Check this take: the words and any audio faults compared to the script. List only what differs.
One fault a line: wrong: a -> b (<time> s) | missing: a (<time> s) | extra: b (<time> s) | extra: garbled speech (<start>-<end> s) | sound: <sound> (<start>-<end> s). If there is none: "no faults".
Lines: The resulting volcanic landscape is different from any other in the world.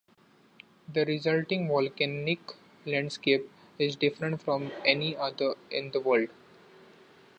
no faults